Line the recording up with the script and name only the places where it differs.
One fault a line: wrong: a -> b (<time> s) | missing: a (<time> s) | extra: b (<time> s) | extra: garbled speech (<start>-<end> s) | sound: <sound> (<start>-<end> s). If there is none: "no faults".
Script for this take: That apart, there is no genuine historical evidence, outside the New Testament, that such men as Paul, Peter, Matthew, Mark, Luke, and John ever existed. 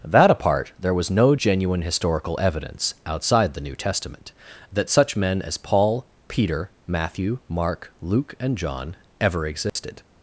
wrong: is -> was (0.9 s)
sound: dropout (9.7-9.8 s)